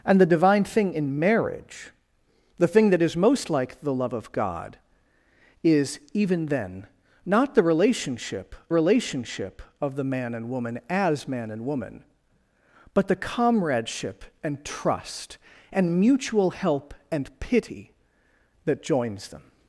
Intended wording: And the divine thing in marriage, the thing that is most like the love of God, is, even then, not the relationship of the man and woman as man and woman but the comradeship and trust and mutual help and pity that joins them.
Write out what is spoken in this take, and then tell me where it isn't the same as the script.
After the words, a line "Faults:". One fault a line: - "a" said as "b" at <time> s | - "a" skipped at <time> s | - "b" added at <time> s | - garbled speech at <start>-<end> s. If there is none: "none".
And the divine thing in marriage, the thing that is most like the love of God, is, even then, not the relationship relationship of the man and woman as man and woman but the comradeship and trust and mutual help and pity that joins them.
Faults:
- "relationship" added at 8.7 s